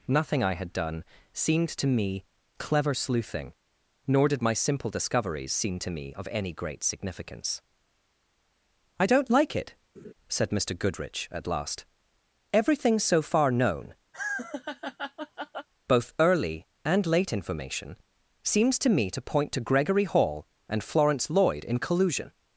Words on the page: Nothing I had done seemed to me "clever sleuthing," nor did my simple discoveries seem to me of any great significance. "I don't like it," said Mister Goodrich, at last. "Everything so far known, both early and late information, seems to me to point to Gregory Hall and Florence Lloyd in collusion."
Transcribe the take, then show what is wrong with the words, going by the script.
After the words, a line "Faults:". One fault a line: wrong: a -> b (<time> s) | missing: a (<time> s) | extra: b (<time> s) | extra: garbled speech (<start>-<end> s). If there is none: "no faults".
Nothing I had done seemed to me "clever sleuthing," nor did my simple discoveries seem to me of any great significance. "I don't like it," said Mister Goodrich, at last. "Everything so far known, both early and late information, seems to me to point to Gregory Hall and Florence Lloyd in collusion."
Faults:
no faults